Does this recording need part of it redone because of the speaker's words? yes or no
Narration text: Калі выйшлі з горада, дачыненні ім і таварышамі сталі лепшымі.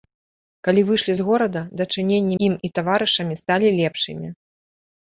no